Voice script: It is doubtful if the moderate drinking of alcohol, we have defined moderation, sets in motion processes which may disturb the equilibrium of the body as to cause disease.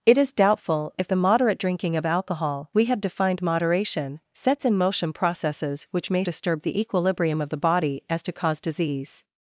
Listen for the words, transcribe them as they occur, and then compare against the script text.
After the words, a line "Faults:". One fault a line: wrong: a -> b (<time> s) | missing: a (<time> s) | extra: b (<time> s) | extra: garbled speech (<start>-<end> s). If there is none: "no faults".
It is doubtful if the moderate drinking of alcohol, we have defined moderation, sets in motion processes which may disturb the equilibrium of the body as to cause disease.
Faults:
no faults